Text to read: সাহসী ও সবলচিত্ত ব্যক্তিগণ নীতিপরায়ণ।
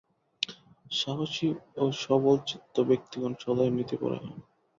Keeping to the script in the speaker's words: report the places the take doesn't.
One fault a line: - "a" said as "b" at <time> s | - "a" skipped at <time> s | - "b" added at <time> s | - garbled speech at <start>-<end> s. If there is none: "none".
- "সদাই" added at 3.4 s